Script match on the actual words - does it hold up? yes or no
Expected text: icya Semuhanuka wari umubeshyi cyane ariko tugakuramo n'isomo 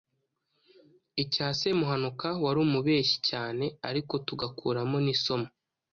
yes